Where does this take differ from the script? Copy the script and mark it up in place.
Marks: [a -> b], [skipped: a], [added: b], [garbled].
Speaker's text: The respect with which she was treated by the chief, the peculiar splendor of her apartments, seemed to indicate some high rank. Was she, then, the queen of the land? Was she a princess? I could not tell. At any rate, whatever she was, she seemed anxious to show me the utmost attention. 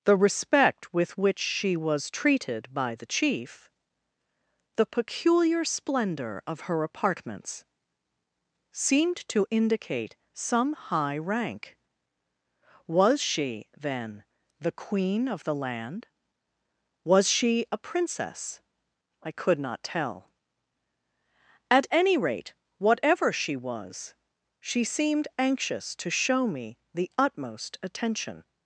The respect with which she was treated by the chief, the peculiar splendor of her apartments, seemed to indicate some high rank. Was she, then, the queen of the land? Was she a princess? I could not tell. At any rate, whatever she was, she seemed anxious to show me the utmost attention.